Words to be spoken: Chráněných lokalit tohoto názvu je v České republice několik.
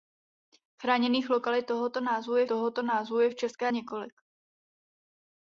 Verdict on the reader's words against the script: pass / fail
fail